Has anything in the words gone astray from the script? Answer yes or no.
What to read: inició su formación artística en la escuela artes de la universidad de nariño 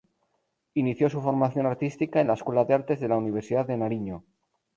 yes